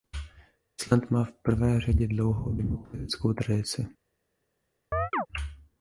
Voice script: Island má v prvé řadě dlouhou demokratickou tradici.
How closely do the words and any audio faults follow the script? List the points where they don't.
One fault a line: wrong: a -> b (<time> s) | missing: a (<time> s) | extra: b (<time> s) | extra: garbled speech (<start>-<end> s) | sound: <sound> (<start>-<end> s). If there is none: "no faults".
sound: chirp (4.9-5.3 s)